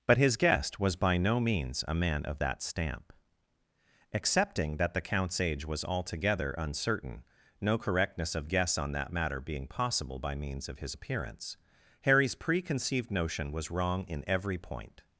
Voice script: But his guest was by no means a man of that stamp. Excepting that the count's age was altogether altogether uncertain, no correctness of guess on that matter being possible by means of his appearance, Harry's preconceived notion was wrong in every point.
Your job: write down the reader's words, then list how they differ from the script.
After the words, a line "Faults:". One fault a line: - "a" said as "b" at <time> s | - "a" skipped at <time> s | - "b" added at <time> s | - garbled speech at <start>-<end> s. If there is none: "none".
But his guest was by no means a man of that stamp. Excepting that the count's age was altogether uncertain, no correctness of guess on that matter being possible by means of his appearance, Harry's preconceived notion was wrong in every point.
Faults:
- "altogether" skipped at 6.5 s